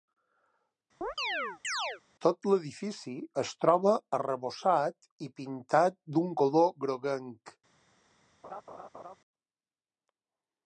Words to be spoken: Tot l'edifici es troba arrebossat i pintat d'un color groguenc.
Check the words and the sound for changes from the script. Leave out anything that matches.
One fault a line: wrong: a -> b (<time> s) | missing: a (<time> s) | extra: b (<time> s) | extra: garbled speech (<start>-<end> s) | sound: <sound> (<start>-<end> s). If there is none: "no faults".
sound: chirp (1.0-2.0 s)
sound: laugh (8.4-9.2 s)